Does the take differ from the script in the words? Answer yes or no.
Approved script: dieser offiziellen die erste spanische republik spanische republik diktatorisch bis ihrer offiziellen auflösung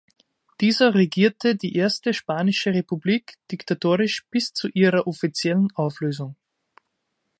yes